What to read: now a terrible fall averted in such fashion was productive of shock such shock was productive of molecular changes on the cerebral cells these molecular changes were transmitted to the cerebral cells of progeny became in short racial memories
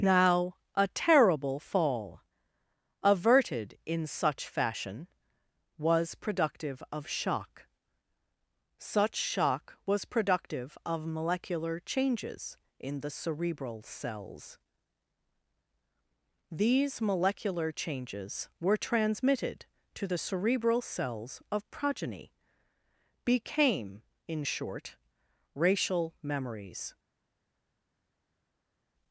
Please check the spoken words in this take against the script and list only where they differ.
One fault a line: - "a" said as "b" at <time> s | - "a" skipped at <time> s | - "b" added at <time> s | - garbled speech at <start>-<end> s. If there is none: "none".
- "on" said as "in" at 12.8 s